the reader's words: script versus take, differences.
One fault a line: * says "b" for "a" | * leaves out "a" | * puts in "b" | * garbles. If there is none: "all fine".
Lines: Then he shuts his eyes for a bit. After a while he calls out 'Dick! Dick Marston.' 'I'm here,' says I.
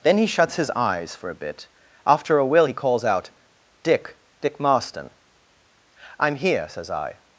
* says "will" for "while"